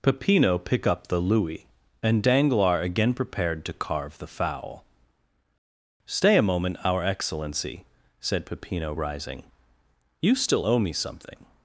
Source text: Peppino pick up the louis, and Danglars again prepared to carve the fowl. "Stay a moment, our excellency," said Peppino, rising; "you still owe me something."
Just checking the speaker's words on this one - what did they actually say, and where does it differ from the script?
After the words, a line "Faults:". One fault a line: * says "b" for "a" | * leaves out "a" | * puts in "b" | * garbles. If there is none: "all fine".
Peppino pick up the louis, and Danglars again prepared to carve the fowl. "Stay a moment, our excellency," said Peppino, rising; "you still owe me something."
Faults:
all fine